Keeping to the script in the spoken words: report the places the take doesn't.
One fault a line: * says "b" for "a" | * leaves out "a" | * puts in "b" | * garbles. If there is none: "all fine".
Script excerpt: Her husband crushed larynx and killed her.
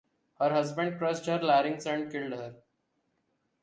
* puts in "her"